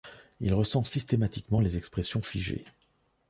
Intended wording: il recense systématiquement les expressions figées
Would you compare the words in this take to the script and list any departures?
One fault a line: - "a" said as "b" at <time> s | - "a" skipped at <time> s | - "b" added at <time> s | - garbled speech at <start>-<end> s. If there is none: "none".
none